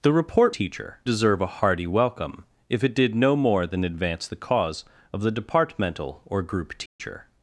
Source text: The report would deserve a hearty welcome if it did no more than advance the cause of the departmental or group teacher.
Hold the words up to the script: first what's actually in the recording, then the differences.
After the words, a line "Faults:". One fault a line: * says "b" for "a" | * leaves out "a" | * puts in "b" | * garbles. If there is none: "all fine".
The report teacher deserve a hearty welcome if it did no more than advance the cause of the departmental or group teacher.
Faults:
* says "teacher" for "would"